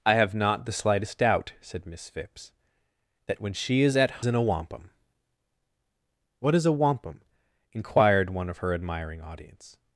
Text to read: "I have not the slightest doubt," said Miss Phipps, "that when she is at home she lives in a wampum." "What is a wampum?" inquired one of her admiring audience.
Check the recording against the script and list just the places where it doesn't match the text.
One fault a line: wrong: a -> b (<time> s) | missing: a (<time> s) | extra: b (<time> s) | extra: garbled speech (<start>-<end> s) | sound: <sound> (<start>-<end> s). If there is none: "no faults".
missing: home she lives (4.2 s)